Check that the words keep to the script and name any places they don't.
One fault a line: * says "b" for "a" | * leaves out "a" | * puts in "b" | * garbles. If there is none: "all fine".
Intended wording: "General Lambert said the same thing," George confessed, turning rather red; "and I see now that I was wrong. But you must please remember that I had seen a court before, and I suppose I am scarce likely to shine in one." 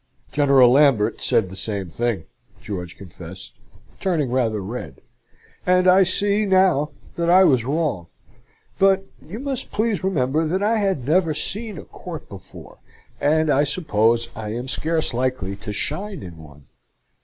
* puts in "never"